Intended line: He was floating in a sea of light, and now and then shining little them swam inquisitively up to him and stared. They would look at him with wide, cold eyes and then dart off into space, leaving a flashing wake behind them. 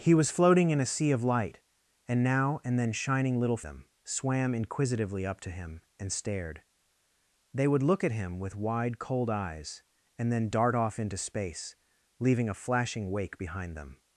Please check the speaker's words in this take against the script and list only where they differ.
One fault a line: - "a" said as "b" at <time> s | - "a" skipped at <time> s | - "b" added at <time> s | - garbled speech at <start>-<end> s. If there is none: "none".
none